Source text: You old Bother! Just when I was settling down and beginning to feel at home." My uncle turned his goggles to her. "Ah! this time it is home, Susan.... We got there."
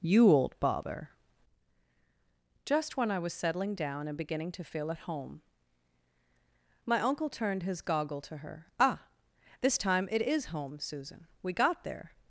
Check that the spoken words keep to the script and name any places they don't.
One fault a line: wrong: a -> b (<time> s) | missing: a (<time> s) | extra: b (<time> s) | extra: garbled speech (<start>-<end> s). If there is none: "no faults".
wrong: goggles -> goggle (7.8 s)